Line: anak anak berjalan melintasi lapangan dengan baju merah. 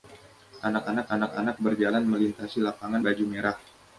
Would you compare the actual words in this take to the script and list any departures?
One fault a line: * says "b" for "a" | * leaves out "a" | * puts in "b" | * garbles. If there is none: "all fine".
* puts in "anak anak"
* leaves out "dengan"